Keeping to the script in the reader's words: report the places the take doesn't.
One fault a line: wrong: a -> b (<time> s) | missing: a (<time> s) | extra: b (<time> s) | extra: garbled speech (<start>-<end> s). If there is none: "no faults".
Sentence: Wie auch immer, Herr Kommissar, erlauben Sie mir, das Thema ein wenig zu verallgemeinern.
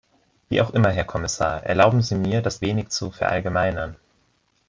missing: Thema ein (2.6 s)